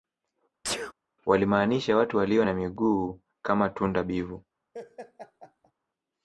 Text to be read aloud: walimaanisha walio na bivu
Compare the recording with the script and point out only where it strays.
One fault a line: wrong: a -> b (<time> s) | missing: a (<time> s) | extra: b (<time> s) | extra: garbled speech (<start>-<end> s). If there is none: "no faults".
extra: watu (2.0 s)
extra: miguu kama tunda (2.5 s)